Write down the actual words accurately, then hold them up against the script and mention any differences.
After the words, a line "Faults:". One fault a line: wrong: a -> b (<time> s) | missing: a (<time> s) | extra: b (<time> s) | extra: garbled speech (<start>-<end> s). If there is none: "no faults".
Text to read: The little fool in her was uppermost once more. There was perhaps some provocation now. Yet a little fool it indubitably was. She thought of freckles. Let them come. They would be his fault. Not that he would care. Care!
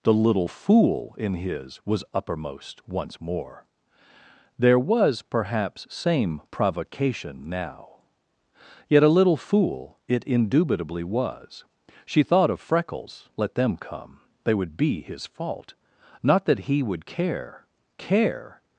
The little fool in his was uppermost once more. There was perhaps same provocation now. Yet a little fool it indubitably was. She thought of freckles. Let them come. They would be his fault. Not that he would care. Care!
Faults:
wrong: her -> his (1.4 s)
wrong: some -> same (5.9 s)